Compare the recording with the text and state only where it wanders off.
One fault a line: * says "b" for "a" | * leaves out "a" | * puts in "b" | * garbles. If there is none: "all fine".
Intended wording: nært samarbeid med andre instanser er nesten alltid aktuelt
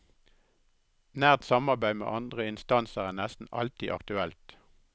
all fine